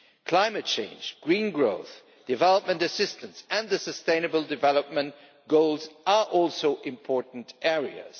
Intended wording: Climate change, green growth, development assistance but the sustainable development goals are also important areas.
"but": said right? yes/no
no